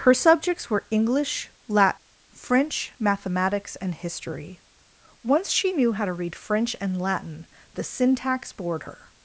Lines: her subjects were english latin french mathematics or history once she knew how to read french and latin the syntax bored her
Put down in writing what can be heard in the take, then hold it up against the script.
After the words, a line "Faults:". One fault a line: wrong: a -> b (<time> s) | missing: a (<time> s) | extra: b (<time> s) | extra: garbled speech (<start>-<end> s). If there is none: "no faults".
her subjects were english latin french mathematics and history once she knew how to read french and latin the syntax bored her
Faults:
wrong: or -> and (3.7 s)